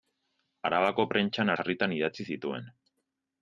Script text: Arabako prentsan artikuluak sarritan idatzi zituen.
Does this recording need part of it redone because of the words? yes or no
yes